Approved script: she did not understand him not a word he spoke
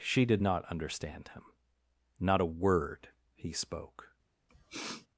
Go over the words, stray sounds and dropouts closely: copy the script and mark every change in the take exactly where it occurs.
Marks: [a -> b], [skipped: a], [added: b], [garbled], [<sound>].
she did not understand him not a word he spoke [sniff]